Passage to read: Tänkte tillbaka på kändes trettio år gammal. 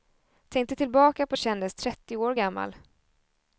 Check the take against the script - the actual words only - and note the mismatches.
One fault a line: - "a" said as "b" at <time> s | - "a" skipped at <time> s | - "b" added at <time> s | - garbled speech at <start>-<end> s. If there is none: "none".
none